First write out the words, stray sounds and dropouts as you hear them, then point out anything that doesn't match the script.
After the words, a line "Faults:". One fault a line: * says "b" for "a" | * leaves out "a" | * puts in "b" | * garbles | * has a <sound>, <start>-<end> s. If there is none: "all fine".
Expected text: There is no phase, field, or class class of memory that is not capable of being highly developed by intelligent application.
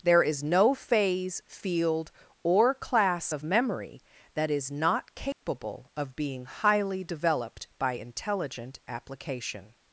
There is no phase, field, or class of memory that is not capable of being highly developed by intelligent application.
Faults:
* leaves out "class"
* has a dropout, 5.3-5.4 s